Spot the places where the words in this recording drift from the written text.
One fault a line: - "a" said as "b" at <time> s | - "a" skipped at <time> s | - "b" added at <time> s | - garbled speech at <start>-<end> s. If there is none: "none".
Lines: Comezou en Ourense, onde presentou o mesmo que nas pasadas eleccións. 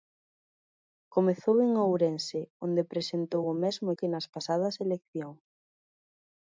none